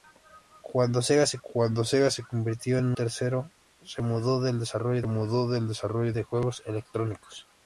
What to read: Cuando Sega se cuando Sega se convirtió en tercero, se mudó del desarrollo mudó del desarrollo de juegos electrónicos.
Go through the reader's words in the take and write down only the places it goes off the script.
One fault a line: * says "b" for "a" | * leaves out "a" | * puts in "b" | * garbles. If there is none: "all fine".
all fine